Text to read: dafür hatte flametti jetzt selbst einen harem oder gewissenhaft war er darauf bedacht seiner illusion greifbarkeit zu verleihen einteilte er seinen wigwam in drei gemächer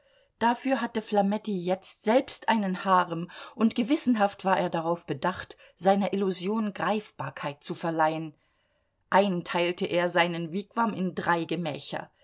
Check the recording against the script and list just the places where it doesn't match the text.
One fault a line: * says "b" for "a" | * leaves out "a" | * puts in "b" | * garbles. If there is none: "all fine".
* says "und" for "oder"